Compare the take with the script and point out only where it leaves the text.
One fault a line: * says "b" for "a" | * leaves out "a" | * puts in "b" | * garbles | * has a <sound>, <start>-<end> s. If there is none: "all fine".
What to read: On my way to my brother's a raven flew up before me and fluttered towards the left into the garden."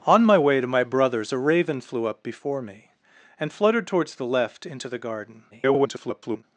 * garbles